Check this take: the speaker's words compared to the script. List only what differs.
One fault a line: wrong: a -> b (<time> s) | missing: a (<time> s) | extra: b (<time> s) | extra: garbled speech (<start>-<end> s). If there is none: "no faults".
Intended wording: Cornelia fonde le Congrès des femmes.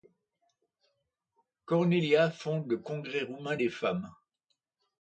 extra: roumain (3.2 s)